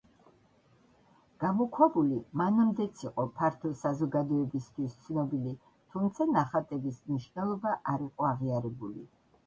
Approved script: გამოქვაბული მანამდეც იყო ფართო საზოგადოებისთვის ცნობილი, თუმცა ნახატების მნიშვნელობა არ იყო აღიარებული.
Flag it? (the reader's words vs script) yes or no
no